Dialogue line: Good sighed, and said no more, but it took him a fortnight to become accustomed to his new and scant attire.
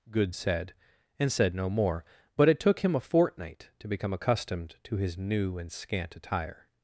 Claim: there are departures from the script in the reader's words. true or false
true